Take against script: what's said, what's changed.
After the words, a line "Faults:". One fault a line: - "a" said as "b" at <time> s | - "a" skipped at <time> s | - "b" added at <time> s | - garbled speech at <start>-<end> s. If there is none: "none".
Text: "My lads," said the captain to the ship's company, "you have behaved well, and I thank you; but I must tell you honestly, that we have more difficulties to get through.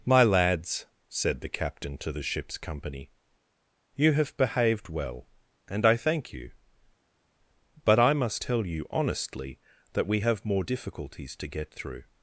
"My lads," said the captain to the ship's company, "you have behaved well, and I thank you; but I must tell you honestly, that we have more difficulties to get through.
Faults:
none